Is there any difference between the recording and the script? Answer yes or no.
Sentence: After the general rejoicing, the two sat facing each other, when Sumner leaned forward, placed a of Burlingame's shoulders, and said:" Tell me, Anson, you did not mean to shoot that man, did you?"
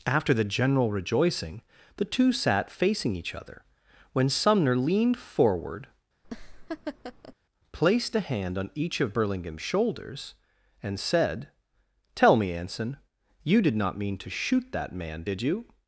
yes